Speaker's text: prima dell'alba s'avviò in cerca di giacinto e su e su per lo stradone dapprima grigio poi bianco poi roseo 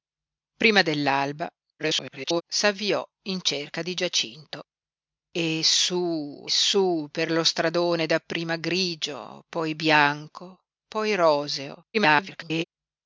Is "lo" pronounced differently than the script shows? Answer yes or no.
no